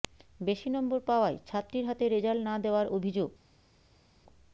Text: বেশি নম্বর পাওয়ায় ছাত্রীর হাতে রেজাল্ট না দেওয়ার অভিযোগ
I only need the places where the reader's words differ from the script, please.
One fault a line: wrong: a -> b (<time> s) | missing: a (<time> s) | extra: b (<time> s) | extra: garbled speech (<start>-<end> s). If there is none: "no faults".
no faults